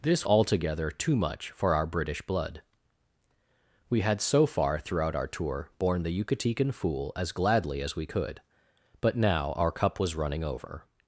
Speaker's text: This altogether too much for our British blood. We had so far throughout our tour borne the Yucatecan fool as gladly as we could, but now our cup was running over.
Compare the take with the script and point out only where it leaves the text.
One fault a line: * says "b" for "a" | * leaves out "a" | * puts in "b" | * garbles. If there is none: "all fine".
all fine